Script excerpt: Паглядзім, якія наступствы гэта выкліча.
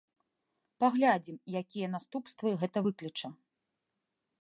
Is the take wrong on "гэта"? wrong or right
right